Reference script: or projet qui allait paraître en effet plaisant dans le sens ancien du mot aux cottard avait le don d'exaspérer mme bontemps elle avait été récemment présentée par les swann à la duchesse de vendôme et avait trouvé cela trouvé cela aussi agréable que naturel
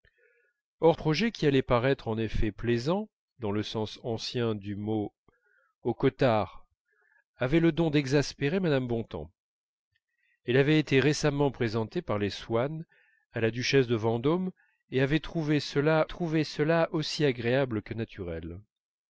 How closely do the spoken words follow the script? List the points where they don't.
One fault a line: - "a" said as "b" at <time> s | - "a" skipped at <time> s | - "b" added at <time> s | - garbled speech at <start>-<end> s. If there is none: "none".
none